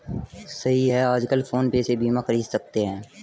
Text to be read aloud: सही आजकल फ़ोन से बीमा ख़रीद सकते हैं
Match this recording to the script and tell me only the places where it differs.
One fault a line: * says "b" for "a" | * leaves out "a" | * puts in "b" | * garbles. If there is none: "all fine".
* puts in "है"
* puts in "पे"